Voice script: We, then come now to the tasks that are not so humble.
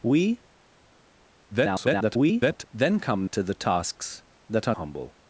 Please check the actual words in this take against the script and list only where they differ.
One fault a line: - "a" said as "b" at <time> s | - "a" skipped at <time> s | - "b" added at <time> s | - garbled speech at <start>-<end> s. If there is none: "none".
- garbled speech at 1.5-2.6 s
- "now" skipped at 3.3 s
- "not so" skipped at 4.8 s